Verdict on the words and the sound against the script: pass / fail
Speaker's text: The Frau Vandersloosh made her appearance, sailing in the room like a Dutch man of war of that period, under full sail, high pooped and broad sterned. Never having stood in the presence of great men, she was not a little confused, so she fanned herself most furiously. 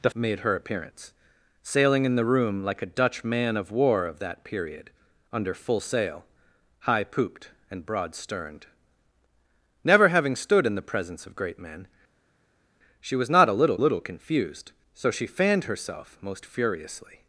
fail